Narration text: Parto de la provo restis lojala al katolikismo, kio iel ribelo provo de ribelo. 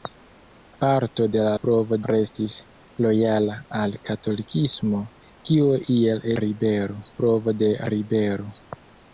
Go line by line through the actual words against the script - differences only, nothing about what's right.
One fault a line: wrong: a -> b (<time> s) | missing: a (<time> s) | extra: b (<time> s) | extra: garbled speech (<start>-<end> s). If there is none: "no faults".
no faults